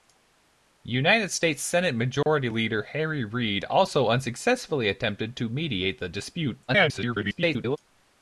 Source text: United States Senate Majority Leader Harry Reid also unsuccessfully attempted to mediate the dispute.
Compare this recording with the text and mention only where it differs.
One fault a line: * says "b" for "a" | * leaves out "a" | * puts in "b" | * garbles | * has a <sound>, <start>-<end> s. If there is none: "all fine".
* has a dropout, 2.2-2.3 s
* garbles